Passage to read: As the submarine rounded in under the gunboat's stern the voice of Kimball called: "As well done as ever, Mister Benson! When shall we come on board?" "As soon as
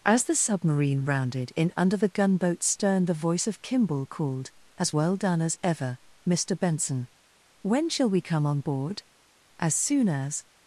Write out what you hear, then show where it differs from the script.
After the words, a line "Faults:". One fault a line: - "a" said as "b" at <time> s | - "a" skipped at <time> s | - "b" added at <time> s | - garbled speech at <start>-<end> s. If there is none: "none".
As the submarine rounded in under the gunboat's stern the voice of Kimball called: "As well done as ever, Mister Benson! When shall we come on board?" "As soon as
Faults:
none